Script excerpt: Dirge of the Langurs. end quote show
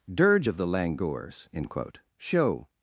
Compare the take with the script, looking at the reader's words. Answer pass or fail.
pass